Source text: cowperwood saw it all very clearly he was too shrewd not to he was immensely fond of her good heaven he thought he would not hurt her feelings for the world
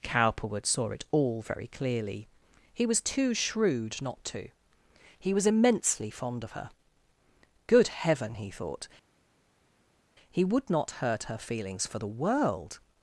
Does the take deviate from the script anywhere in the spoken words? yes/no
no